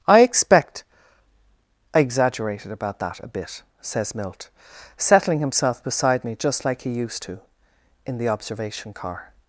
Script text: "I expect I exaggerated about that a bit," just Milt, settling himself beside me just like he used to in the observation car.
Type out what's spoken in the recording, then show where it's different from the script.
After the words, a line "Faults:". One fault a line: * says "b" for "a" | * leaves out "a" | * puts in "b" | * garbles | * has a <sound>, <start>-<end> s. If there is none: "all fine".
"I expect I exaggerated about that a bit," says Milt, settling himself beside me just like he used to in the observation car.
Faults:
* says "says" for "just"